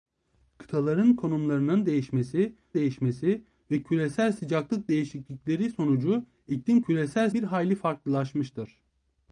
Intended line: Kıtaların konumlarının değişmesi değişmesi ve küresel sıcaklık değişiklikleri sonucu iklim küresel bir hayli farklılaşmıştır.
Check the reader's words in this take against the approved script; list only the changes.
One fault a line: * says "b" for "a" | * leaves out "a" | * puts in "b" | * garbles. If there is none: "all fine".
all fine